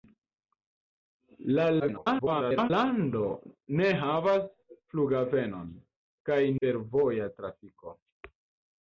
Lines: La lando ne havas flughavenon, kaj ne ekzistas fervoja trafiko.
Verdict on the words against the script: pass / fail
fail